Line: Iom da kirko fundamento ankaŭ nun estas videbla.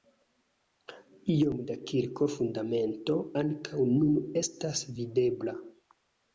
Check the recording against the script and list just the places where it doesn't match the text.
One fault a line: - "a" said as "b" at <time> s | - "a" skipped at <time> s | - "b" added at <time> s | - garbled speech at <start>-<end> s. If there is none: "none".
none